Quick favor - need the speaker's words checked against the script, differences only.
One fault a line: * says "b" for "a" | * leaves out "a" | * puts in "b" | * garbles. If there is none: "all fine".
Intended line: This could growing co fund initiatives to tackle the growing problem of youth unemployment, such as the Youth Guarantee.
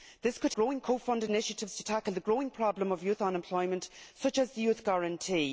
all fine